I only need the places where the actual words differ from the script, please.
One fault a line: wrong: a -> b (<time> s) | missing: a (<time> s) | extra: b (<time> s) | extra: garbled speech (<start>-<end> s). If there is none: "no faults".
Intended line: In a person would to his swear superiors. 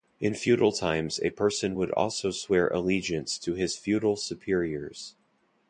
extra: feudal times (0.3 s)
extra: also swear allegiance (1.9 s)
wrong: swear -> feudal (3.8 s)